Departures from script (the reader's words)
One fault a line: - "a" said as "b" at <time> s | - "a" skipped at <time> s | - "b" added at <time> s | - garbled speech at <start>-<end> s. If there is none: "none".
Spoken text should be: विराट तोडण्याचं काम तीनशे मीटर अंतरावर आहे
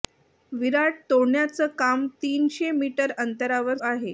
none